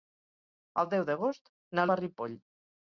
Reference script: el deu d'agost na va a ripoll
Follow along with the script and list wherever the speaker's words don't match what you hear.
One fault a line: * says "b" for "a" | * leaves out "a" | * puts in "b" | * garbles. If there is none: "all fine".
all fine